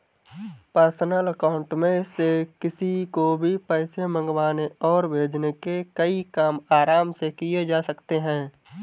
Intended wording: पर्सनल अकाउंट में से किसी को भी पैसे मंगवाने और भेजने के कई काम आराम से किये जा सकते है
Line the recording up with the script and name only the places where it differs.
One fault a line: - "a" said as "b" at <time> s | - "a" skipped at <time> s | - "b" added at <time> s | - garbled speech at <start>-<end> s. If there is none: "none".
none